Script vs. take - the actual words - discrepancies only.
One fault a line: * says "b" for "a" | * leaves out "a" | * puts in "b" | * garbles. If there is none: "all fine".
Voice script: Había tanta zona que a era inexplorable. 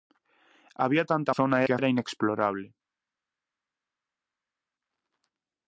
all fine